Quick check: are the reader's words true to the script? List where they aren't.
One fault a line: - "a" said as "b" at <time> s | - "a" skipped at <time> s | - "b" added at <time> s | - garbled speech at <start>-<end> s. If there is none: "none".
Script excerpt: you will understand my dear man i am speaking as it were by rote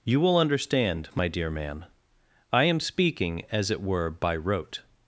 none